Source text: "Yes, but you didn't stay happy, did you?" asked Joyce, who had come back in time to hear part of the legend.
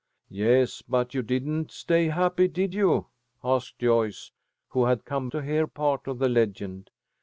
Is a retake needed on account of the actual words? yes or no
yes